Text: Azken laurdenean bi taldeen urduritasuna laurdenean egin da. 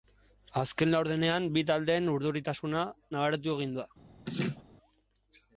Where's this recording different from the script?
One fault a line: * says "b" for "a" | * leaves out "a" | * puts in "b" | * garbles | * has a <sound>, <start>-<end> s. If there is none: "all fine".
* says "nabaritu" for "laurdenean"
* has a laugh, 4.3-4.6 s